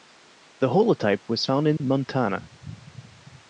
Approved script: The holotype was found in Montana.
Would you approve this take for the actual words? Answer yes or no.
yes